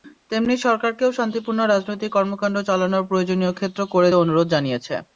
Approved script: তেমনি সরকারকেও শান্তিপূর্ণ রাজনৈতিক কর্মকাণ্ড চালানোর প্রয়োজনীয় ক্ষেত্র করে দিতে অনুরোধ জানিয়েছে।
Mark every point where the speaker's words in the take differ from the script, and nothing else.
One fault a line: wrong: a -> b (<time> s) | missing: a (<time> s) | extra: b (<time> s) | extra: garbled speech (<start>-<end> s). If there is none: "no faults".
missing: দিতে (4.1 s)